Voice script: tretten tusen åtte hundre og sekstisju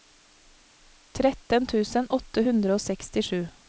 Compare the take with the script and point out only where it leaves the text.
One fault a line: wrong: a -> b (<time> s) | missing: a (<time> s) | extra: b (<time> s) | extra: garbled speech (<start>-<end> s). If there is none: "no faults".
no faults